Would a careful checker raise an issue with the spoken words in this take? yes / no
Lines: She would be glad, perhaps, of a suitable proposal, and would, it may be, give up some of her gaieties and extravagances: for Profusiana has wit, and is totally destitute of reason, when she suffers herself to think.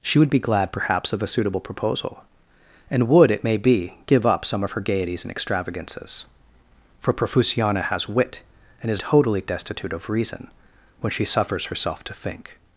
no